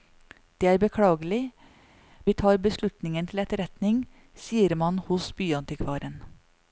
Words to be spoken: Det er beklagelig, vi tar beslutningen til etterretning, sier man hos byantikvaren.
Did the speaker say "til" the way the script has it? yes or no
yes